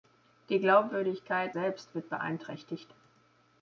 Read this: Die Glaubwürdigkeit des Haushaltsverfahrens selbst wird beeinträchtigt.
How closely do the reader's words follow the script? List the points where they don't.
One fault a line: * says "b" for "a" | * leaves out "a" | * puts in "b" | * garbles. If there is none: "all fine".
* leaves out "des Haushaltsverfahrens"